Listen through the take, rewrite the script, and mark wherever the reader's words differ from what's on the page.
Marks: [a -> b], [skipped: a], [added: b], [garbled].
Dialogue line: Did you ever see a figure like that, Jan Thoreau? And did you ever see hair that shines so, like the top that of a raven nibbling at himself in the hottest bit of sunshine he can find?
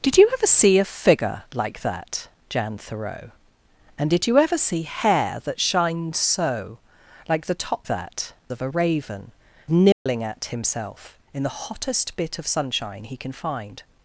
Did you ever see a figure like that, Jan Thoreau? And did you ever see hair that shines so, like the top that of a raven nibbling at himself in the hottest bit of sunshine he can find?